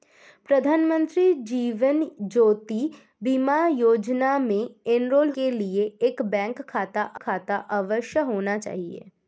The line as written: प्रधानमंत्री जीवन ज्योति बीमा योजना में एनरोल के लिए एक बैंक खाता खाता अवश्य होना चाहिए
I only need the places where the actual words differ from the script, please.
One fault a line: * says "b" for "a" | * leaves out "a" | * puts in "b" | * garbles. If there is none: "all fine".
all fine